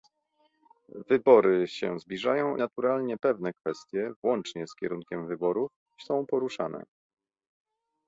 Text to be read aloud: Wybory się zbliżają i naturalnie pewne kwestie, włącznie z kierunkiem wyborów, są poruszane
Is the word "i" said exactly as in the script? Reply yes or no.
no